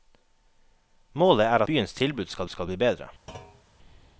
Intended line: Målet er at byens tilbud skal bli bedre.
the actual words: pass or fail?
fail